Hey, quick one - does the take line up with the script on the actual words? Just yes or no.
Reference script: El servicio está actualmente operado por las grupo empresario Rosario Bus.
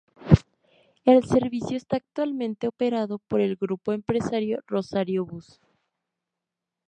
no